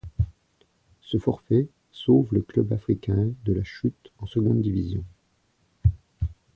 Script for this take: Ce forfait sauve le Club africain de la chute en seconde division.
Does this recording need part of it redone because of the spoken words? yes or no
no